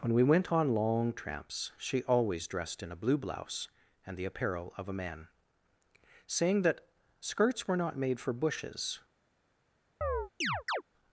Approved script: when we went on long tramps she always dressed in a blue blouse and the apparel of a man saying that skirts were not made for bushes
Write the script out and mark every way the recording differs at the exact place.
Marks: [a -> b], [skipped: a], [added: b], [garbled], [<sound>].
when we went on long tramps she always dressed in a blue blouse and the apparel of a man saying that skirts were not made for bushes [chirp]